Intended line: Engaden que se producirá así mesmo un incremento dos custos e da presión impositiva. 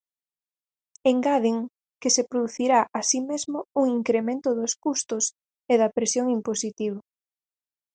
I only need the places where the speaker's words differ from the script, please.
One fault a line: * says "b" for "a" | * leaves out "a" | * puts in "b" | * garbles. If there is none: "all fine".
all fine